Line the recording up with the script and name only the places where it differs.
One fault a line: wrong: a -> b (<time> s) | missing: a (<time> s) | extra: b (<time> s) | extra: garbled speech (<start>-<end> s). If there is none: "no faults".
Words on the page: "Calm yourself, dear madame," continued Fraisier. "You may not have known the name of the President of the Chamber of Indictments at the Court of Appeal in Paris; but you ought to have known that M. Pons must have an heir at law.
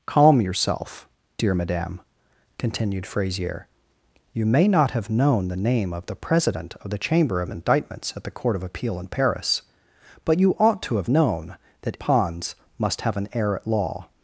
missing: M (12.0 s)